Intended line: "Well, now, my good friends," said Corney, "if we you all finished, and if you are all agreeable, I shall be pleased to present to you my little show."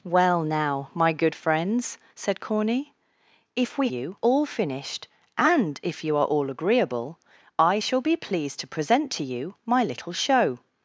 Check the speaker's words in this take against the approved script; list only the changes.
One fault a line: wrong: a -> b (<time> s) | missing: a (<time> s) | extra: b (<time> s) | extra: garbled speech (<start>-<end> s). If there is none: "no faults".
no faults